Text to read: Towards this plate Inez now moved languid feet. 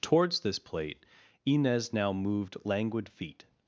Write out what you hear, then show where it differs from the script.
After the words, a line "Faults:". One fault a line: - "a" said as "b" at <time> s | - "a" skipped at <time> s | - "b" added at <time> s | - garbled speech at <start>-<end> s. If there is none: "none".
Towards this plate Inez now moved languid feet.
Faults:
none